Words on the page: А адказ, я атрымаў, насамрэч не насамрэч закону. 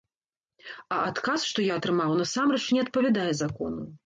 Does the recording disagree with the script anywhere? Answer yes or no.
yes